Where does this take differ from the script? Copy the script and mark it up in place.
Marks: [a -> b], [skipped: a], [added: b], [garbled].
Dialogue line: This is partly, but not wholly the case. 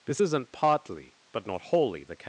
This [is -> isn't] partly, but not wholly the case.